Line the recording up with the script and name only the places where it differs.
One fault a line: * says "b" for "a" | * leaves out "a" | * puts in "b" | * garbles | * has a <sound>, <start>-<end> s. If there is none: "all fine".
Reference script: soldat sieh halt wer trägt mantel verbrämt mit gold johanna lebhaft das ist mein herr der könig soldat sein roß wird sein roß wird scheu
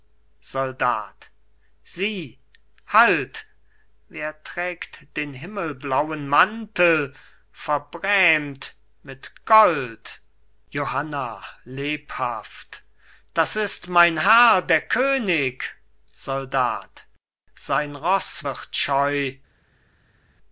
* puts in "den himmelblauen"
* leaves out "sein roß wird"